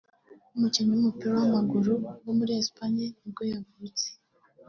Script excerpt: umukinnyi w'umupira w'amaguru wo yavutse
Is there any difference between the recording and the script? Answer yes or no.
yes